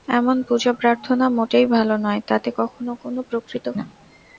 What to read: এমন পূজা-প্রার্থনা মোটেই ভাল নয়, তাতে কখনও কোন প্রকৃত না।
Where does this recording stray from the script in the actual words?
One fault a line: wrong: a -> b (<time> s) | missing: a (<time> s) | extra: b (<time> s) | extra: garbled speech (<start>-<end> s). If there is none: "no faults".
no faults